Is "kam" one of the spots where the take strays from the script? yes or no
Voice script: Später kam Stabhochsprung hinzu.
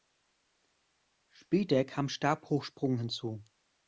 no